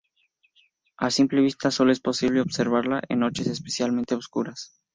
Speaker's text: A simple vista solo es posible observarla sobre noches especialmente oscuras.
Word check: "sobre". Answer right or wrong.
wrong